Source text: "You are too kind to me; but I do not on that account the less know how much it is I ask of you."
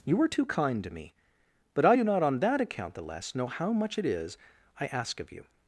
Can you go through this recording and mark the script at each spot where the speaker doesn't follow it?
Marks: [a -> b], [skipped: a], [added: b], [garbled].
"You [are -> were] too kind to me; but I do not on that account the less know how much it is I ask of you."